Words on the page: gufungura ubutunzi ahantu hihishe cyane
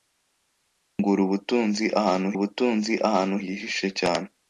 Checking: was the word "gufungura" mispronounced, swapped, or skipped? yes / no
no